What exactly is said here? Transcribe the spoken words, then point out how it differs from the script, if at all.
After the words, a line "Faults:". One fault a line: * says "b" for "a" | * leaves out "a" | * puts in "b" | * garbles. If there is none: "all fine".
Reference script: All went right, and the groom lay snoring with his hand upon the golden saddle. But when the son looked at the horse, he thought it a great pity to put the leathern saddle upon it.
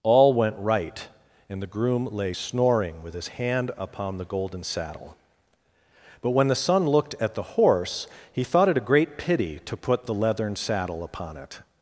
All went right, and the groom lay snoring with his hand upon the golden saddle. But when the son looked at the horse, he thought it a great pity to put the leathern saddle upon it.
Faults:
all fine